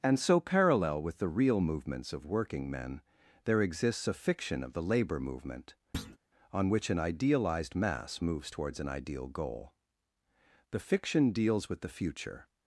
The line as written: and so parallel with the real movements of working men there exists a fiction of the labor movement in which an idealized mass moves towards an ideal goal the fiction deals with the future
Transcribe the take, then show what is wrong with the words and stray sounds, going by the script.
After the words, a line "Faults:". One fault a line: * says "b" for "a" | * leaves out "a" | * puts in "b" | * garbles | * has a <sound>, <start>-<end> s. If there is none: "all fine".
and so parallel with the real movements of working men there exists a fiction of the labor movement on which an idealized mass moves towards an ideal goal the fiction deals with the future
Faults:
* has a thud, 5.9-6.2 s
* says "on" for "in"